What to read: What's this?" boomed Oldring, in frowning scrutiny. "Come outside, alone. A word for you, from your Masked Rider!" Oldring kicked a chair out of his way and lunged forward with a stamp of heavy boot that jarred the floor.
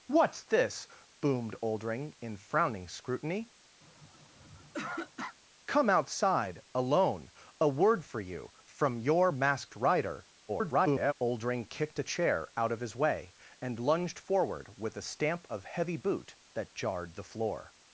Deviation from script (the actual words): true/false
true